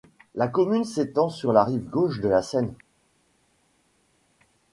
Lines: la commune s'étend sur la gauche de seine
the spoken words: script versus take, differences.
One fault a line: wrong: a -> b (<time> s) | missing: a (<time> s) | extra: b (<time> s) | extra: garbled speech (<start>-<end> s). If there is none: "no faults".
extra: rive (1.6 s)
extra: la (2.3 s)